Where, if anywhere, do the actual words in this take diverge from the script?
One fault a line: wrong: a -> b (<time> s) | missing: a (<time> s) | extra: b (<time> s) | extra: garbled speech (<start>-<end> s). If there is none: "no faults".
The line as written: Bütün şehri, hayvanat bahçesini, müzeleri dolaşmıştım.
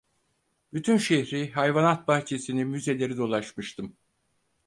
no faults